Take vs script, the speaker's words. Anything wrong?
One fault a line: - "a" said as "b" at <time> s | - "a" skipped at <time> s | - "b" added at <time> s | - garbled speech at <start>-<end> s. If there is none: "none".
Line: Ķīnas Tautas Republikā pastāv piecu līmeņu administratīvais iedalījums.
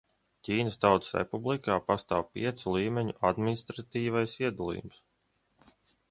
none